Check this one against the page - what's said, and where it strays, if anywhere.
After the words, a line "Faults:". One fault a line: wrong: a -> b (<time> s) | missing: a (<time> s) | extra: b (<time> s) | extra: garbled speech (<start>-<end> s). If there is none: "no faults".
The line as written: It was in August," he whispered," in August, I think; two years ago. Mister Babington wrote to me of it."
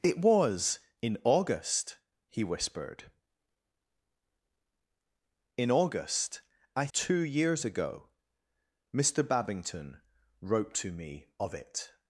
It was in August," he whispered," in August, I; two years ago. Mister Babington wrote to me of it."
Faults:
missing: think (6.9 s)